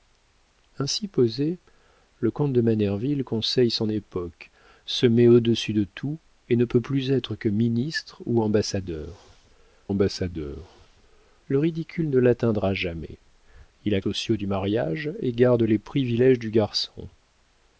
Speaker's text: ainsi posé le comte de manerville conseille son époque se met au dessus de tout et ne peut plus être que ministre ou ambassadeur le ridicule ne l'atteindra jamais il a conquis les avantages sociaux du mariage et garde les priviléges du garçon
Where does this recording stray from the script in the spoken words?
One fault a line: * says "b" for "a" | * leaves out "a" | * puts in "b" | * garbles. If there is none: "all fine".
* puts in "ambassadeur"
* leaves out "conquis les avantages"